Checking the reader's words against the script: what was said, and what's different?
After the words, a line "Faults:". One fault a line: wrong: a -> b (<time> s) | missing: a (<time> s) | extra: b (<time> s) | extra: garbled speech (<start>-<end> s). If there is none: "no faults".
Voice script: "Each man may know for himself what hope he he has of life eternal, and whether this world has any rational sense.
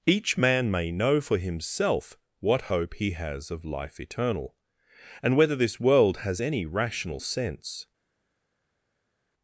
"Each man may know for himself what hope he has of life eternal, and whether this world has any rational sense.
Faults:
missing: he (3.1 s)